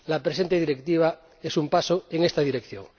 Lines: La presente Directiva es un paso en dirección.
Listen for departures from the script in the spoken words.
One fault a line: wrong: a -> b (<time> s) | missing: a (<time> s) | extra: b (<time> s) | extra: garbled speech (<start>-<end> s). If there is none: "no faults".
extra: esta (2.2 s)